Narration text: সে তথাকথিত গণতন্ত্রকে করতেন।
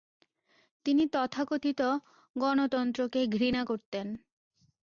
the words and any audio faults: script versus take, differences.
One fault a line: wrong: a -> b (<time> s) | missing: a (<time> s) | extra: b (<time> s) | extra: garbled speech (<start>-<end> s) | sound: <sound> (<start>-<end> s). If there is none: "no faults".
wrong: সে -> তিনি (0.8 s)
extra: ঘৃণা (3.3 s)